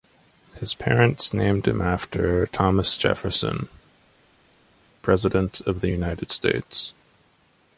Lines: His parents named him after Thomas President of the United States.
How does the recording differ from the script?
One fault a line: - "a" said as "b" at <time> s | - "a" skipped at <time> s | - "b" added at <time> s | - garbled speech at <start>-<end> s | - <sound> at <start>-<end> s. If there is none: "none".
- "Jefferson" added at 3.0 s